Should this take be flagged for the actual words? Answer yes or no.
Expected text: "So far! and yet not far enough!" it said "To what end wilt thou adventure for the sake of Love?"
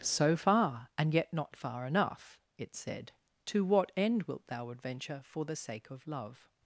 no